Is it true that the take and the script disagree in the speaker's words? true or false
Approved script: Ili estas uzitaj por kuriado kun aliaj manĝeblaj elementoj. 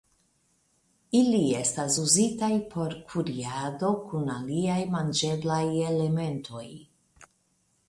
false